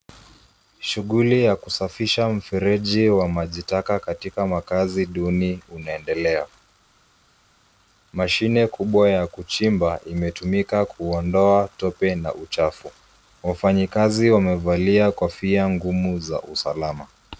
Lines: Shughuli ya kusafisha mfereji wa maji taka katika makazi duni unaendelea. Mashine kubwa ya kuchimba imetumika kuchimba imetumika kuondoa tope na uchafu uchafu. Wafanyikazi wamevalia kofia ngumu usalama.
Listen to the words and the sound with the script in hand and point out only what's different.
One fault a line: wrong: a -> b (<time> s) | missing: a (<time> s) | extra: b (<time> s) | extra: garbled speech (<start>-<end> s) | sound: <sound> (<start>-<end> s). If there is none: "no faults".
missing: kuchimba imetumika (10.8 s)
missing: uchafu (12.9 s)
extra: za (16.2 s)